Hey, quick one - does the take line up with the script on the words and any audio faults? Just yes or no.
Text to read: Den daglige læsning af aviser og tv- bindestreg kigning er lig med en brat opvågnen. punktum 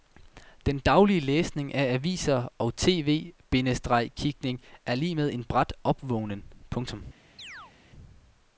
no